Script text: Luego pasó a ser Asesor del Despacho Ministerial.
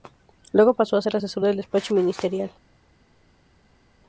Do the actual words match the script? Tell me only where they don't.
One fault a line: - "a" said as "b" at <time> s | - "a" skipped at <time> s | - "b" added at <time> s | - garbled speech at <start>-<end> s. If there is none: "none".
none